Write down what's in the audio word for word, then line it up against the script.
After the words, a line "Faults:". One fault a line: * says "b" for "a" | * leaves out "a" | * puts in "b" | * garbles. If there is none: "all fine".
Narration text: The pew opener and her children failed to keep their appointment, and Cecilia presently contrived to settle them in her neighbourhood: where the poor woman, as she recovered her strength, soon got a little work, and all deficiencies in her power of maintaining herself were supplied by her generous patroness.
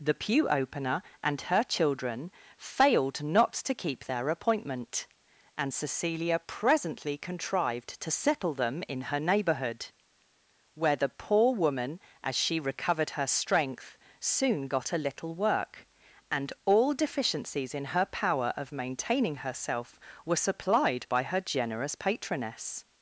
The pew opener and her children failed not to keep their appointment, and Cecilia presently contrived to settle them in her neighbourhood: where the poor woman, as she recovered her strength, soon got a little work, and all deficiencies in her power of maintaining herself were supplied by her generous patroness.
Faults:
* puts in "not"